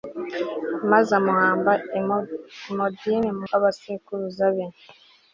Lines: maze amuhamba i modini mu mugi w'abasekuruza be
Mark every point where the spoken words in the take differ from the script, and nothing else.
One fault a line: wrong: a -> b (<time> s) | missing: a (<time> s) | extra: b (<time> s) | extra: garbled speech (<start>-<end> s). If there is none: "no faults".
missing: mugi (3.5 s)